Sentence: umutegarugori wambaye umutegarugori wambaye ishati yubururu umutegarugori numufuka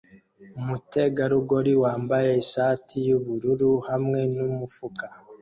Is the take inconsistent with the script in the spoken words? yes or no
yes